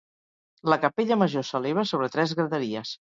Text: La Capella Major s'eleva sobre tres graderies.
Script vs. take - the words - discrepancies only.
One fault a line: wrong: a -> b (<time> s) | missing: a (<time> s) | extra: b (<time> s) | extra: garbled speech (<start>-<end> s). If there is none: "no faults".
no faults